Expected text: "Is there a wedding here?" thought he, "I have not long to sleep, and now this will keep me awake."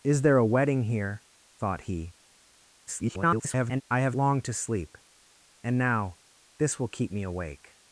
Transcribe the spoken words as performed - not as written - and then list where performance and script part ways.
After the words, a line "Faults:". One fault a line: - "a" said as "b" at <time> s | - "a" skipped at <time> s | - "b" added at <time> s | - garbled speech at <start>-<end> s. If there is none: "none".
"Is there a wedding here?" thought he, [garbled] "I have long to sleep, and now this will keep me awake."
Faults:
- garbled speech at 2.9-3.8 s
- "not" skipped at 4.2 s